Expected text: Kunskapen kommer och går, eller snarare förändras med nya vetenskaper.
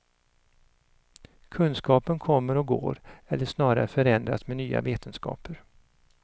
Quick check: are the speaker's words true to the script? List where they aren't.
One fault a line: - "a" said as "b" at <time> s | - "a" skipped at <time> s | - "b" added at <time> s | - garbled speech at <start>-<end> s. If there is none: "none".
none